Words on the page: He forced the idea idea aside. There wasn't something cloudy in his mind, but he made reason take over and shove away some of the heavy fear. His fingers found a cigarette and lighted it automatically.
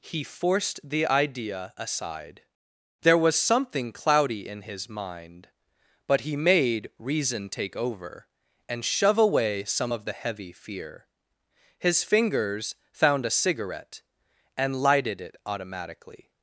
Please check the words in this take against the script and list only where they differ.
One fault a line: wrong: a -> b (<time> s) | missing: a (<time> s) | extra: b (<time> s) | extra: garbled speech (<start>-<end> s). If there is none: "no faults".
missing: idea (1.7 s)
wrong: wasn't -> was (3.2 s)